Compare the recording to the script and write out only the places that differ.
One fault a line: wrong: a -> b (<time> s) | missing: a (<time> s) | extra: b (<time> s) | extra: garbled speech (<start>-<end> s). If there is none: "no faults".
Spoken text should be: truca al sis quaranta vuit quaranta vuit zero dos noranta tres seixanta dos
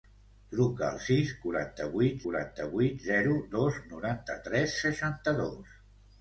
no faults